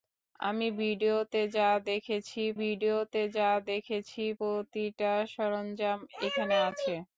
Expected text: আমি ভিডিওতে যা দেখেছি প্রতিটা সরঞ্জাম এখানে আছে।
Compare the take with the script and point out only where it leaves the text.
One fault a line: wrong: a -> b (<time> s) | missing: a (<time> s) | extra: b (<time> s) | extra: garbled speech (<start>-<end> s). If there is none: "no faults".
extra: ভিডিওতে যা দেখেছি (2.6 s)